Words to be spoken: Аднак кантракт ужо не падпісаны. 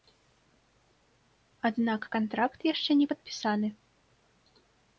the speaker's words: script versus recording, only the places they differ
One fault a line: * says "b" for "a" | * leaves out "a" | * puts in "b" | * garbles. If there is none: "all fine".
* says "яшчэ" for "ужо"